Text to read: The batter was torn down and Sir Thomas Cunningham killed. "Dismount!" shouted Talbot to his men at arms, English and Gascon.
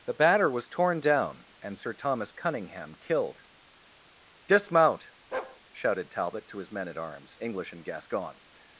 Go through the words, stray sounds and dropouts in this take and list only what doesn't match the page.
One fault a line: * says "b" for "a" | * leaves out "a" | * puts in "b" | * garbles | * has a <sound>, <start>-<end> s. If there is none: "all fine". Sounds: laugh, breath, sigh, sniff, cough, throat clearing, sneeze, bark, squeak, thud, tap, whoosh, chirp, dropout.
* has a bark, 5.3-5.6 s